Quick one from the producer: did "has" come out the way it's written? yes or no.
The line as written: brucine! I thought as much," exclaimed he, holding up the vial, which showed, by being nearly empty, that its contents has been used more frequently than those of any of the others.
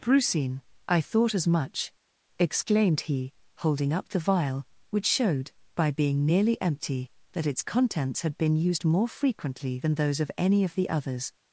no